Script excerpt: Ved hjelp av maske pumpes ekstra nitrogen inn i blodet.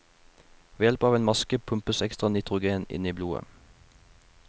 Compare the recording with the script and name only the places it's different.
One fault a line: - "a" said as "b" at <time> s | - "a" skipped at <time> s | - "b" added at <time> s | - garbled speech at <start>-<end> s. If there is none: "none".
- "en" added at 1.2 s